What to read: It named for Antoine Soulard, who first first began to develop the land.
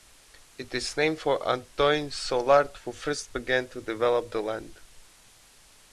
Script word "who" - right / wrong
right